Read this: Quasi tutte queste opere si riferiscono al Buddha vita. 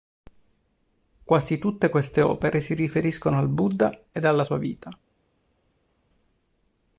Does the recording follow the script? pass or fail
fail